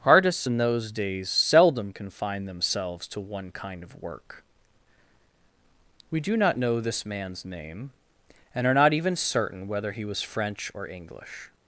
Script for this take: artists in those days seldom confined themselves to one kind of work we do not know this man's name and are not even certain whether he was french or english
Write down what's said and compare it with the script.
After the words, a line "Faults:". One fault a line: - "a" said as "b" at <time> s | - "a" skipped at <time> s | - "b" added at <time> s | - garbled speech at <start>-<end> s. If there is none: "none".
artists in those days seldom confined themselves to one kind of work we do not know this man's name and are not even certain whether he was french or english
Faults:
none